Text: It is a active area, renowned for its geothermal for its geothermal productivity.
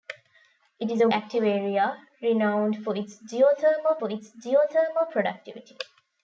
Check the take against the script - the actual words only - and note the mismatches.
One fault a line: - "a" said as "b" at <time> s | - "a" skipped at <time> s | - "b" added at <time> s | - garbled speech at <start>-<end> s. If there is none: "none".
none